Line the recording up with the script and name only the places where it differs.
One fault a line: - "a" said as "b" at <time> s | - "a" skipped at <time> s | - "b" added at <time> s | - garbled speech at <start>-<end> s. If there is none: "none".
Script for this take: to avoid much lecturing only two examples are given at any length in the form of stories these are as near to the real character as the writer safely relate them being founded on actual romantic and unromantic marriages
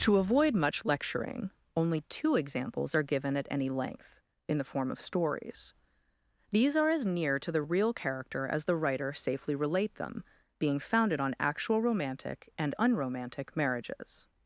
none